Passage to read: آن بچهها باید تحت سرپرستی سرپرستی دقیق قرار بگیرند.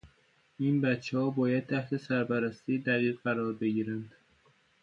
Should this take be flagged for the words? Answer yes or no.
yes